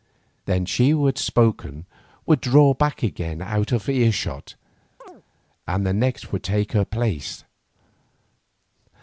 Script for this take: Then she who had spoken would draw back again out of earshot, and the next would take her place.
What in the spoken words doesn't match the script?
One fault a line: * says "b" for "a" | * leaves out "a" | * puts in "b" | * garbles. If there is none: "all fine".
all fine